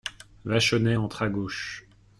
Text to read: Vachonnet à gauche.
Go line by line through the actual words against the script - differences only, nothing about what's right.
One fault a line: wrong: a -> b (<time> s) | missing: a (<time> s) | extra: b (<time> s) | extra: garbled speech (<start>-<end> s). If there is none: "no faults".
extra: entre (0.9 s)